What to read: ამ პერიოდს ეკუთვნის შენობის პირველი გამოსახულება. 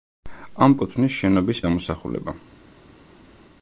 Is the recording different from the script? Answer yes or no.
yes